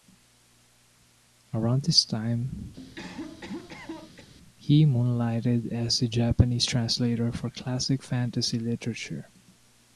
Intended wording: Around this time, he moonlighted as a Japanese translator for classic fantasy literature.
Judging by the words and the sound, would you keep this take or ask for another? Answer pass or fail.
fail